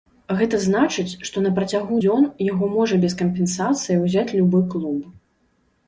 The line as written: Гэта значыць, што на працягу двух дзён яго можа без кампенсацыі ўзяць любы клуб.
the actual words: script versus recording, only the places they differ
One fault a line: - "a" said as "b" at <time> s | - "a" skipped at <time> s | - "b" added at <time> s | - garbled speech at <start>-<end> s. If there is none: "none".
- "двух" skipped at 2.0 s